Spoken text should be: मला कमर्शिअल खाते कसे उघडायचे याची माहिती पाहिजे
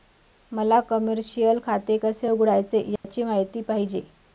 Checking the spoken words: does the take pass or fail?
pass